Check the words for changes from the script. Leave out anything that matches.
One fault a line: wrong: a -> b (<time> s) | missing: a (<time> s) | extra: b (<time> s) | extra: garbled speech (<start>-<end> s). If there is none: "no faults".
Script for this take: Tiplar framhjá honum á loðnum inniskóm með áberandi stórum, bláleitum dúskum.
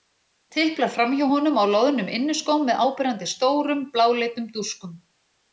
no faults